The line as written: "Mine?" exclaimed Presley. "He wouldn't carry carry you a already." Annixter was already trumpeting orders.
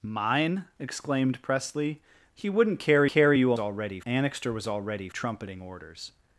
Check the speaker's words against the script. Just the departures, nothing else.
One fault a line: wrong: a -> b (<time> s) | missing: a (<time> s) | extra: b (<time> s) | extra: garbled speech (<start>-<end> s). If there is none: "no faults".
no faults